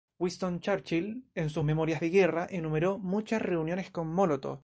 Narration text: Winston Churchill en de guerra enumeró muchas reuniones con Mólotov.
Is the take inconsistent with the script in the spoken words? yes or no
yes